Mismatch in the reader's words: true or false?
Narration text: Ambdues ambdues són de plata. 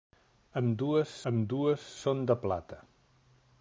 false